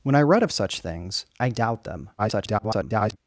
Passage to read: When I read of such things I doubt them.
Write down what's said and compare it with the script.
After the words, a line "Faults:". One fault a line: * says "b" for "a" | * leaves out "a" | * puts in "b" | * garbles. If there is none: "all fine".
When I read of such things I doubt them. [garbled]
Faults:
* garbles